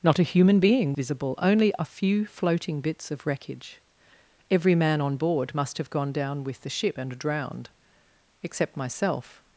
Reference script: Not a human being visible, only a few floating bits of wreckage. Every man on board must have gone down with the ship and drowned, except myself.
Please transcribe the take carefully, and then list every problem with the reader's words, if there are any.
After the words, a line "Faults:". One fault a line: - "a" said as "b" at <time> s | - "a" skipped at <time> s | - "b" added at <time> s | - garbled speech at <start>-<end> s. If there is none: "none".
Not a human being visible, only a few floating bits of wreckage. Every man on board must have gone down with the ship and drowned, except myself.
Faults:
none